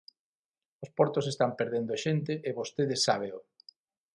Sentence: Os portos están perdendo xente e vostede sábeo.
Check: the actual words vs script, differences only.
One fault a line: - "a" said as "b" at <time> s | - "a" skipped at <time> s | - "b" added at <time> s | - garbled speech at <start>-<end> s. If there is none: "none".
none